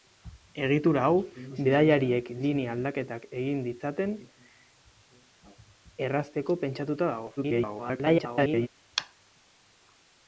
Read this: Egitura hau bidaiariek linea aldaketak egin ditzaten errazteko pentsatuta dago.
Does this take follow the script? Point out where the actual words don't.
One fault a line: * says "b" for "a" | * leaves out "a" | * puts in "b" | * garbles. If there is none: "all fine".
* garbles